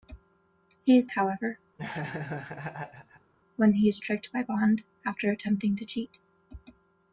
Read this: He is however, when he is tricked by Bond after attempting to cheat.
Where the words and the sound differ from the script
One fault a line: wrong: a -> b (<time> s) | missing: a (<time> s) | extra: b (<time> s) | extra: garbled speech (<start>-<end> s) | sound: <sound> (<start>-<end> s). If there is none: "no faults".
sound: laugh (1.8-3.3 s)